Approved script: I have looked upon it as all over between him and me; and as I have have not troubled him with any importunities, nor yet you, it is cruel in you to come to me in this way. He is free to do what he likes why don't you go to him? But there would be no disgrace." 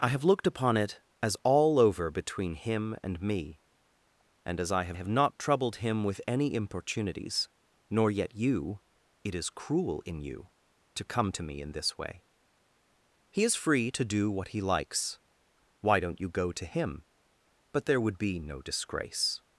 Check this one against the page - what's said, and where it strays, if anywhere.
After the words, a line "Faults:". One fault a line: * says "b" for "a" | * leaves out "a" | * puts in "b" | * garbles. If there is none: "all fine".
I have looked upon it as all over between him and me; and as I have have not troubled him with any importunities, nor yet you, it is cruel in you to come to me in this way. He is free to do what he likes why don't you go to him? But there would be no disgrace."
Faults:
all fine